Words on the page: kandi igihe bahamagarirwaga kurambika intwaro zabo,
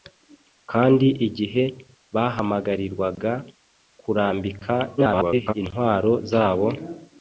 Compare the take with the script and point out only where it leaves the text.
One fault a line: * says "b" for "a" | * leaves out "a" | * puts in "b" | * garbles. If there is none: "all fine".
* garbles